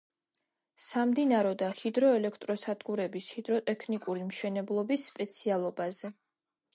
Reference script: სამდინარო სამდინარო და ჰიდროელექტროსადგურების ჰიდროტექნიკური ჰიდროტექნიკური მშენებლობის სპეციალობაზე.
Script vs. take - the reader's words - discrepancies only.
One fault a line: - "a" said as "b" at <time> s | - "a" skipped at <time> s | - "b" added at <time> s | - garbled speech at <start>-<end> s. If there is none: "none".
- "სამდინარო" skipped at 1.5 s
- "ჰიდროტექნიკური" skipped at 4.2 s